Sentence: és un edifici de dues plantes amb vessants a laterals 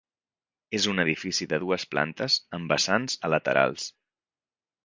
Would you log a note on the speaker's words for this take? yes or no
no